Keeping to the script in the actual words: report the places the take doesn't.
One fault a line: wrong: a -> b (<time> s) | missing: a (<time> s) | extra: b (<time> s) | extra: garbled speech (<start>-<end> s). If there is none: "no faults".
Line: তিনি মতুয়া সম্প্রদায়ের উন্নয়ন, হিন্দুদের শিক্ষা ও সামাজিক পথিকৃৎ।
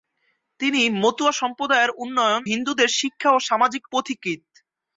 no faults